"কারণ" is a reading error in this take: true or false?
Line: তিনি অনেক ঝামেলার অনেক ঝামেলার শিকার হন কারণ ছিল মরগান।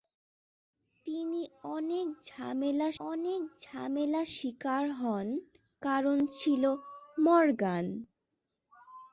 false